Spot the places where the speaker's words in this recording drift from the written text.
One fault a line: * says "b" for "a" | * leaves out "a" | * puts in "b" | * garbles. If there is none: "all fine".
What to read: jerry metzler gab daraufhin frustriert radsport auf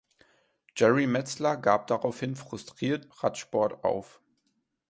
all fine